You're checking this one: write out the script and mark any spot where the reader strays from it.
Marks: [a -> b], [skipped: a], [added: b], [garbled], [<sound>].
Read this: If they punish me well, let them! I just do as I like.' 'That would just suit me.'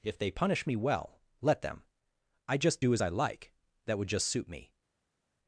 If they punish me well, let them! I just do as I like.' 'That would just suit me.'